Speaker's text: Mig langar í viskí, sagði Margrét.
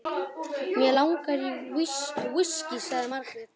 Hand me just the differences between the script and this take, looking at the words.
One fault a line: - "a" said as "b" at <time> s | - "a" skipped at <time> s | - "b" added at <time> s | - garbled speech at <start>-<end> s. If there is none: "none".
none